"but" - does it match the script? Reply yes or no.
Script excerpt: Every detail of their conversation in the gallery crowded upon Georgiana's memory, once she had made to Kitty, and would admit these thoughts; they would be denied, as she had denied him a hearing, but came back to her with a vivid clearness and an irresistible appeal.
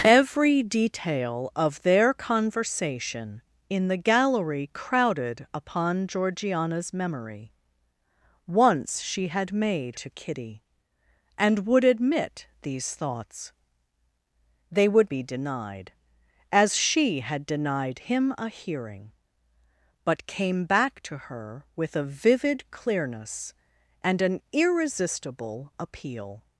yes